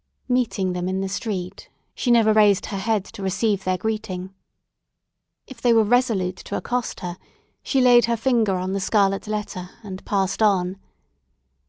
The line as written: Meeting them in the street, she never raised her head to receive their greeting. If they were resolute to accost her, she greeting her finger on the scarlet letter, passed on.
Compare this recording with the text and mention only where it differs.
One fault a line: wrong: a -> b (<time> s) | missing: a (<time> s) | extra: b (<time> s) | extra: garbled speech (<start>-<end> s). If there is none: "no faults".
wrong: greeting -> laid (7.8 s)
extra: and (9.8 s)